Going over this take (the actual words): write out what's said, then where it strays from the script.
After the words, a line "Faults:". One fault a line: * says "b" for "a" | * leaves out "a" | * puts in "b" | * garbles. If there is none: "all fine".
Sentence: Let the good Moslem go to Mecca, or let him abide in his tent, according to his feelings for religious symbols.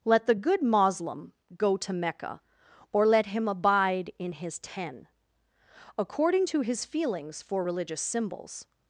Let the good Moslem go to Mecca, or let him abide in his ten, according to his feelings for religious symbols.
Faults:
* says "ten" for "tent"